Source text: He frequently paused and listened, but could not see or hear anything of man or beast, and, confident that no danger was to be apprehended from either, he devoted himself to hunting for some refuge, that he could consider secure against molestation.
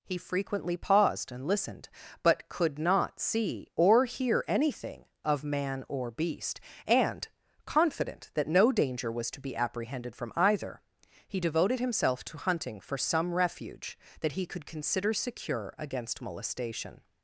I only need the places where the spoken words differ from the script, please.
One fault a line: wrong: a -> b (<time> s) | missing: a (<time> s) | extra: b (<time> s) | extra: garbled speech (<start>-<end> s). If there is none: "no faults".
no faults